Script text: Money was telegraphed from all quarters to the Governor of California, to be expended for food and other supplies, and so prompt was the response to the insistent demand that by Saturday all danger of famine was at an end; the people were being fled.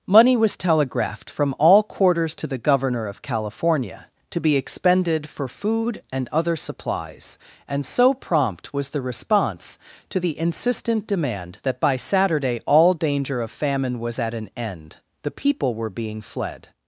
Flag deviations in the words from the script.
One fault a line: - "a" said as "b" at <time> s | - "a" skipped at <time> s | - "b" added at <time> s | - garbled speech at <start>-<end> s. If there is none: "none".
none